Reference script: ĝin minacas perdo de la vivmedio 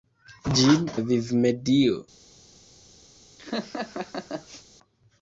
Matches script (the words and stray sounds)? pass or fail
fail